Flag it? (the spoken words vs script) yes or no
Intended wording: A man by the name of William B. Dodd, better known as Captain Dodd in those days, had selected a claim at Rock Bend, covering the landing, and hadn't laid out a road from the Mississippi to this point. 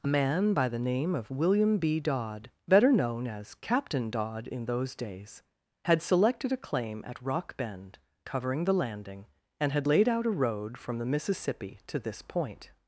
yes